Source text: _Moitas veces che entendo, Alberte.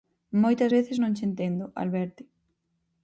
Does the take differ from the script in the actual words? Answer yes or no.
yes